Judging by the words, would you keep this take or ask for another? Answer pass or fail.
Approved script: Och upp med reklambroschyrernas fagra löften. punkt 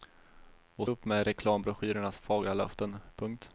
pass